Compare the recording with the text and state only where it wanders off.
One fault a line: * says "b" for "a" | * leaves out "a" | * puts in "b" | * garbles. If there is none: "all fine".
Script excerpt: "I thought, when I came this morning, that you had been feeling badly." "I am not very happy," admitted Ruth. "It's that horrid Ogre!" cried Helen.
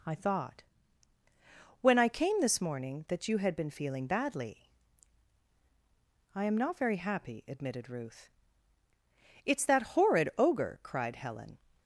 all fine